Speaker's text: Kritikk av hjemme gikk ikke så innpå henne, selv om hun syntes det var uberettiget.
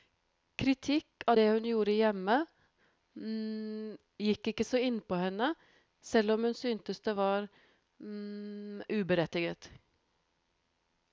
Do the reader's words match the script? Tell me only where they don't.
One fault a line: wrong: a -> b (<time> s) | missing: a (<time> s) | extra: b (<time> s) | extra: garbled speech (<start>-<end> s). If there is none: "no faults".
extra: det hun gjorde (1.4 s)